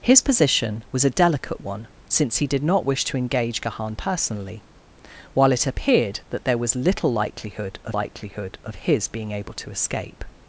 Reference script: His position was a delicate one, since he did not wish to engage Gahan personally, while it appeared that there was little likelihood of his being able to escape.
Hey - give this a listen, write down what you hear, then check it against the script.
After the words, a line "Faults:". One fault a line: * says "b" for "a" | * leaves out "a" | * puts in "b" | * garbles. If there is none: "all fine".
His position was a delicate one, since he did not wish to engage Gahan personally, while it appeared that there was little likelihood of likelihood of his being able to escape.
Faults:
* puts in "likelihood of"